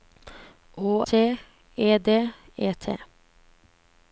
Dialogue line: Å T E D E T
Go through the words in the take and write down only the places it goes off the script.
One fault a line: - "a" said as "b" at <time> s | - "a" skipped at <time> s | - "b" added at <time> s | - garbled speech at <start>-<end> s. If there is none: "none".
none